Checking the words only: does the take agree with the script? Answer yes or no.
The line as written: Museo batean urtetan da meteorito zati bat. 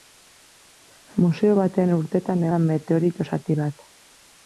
yes